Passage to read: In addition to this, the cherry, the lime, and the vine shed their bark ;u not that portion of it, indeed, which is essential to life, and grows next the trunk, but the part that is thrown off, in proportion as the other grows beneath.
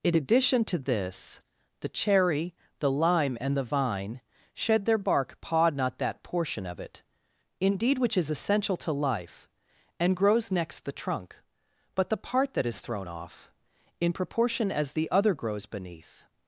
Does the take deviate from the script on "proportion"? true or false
false